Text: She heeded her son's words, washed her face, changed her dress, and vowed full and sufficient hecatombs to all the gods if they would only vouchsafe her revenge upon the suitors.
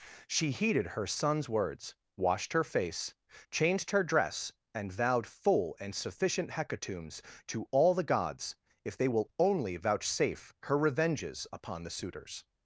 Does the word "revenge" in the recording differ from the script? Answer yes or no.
yes